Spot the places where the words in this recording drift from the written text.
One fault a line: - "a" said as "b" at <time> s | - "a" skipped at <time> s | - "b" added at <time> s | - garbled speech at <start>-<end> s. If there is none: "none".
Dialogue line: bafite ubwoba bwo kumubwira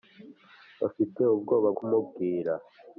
- "bwo" skipped at 1.7 s